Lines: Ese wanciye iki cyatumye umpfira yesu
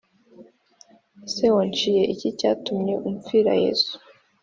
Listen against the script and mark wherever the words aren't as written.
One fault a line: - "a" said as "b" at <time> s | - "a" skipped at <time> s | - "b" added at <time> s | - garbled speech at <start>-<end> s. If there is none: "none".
none